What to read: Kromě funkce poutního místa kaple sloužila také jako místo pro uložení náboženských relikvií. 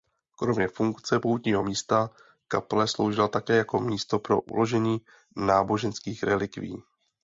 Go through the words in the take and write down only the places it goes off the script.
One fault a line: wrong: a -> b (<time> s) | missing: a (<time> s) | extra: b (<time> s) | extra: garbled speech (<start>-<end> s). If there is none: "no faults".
no faults